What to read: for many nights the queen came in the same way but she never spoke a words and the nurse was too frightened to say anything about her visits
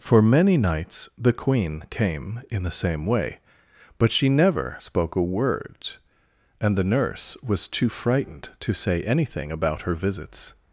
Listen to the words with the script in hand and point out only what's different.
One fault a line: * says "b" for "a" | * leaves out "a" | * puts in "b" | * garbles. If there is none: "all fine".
* says "word" for "words"